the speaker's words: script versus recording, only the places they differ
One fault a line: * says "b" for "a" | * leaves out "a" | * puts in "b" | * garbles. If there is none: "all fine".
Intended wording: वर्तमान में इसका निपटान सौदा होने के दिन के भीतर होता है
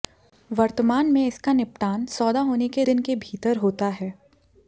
all fine